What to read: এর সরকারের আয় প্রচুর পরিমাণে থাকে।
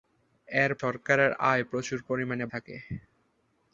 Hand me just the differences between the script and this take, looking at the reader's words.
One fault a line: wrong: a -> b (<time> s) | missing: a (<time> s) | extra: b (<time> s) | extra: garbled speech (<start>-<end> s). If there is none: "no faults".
no faults